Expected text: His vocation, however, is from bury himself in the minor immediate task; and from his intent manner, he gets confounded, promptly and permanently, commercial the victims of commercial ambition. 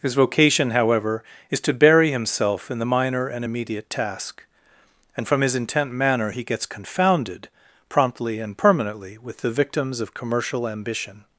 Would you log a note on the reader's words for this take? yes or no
yes